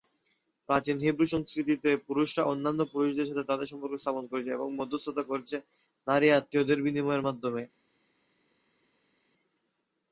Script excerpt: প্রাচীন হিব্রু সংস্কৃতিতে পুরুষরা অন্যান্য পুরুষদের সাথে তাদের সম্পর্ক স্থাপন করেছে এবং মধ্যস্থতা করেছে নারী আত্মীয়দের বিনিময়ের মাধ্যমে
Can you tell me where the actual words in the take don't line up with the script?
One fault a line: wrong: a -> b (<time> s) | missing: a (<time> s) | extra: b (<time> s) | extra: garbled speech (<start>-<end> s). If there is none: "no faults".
no faults